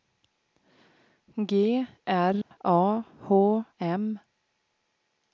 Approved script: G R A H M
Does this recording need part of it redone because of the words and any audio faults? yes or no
yes